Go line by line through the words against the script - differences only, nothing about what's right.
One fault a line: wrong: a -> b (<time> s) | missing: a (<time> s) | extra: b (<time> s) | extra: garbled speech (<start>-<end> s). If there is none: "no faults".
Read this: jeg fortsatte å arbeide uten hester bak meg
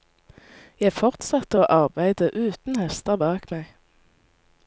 no faults